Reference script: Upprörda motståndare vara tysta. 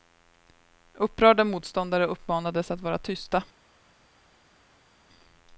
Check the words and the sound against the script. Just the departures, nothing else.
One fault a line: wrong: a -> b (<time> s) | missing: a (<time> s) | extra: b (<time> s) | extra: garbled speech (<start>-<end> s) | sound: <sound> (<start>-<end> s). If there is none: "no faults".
extra: uppmanades att (2.0 s)